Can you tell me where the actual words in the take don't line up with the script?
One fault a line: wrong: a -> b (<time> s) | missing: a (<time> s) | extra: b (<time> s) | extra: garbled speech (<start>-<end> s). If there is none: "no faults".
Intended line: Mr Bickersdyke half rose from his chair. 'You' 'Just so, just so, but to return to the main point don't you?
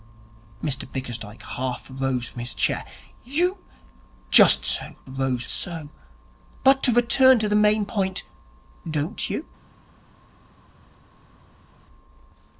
wrong: just -> rose (5.1 s)